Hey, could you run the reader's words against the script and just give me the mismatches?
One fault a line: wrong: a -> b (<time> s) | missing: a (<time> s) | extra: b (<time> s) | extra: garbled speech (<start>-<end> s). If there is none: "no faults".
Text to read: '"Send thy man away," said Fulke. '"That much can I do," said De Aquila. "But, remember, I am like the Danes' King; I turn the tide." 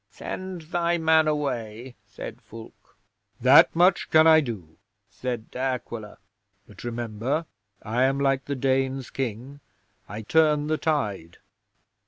no faults